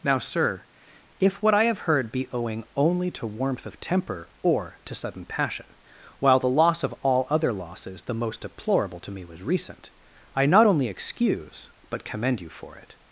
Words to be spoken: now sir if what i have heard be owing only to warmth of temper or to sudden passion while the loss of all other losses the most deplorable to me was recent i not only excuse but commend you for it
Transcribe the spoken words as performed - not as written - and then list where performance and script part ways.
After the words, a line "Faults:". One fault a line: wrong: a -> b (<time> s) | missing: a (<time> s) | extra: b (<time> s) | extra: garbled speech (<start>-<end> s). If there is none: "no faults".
now sir if what i have heard be owing only to warmth of temper or to sudden passion while the loss of all other losses the most deplorable to me was recent i not only excuse but commend you for it
Faults:
no faults